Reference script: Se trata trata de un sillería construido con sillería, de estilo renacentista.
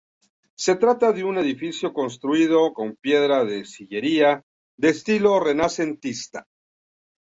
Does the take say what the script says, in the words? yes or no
no